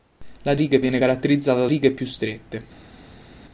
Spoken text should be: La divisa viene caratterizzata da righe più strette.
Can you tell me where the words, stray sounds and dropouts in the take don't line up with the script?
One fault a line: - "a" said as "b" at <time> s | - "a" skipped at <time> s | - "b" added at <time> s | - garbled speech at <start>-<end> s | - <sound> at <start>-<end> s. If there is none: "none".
- "divisa" said as "righe" at 0.5 s
- "da" skipped at 1.7 s